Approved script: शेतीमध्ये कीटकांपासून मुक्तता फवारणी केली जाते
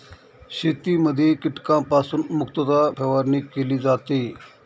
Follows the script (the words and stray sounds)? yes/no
yes